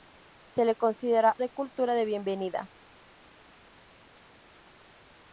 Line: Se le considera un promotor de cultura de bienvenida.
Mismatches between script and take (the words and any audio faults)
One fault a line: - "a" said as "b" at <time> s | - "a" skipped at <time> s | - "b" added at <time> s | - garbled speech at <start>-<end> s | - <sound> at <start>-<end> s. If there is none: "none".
- "un promotor" skipped at 1.4 s